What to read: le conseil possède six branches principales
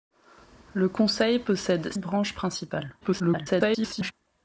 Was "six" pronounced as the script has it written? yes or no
no